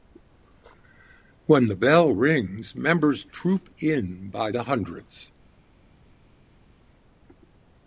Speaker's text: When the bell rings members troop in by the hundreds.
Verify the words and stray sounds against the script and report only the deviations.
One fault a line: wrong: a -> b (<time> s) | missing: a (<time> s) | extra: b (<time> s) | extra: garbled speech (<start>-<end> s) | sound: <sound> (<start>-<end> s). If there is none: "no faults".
no faults